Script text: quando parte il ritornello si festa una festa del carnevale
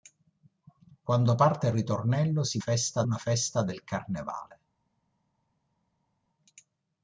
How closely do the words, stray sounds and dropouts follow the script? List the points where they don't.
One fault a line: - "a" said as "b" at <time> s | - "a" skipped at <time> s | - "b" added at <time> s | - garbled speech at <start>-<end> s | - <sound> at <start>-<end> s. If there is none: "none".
none